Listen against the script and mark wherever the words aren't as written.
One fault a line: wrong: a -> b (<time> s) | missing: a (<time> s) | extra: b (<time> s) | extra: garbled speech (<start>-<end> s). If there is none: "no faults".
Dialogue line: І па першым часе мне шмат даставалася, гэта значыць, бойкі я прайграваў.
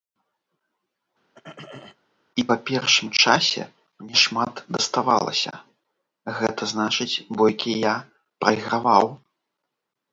no faults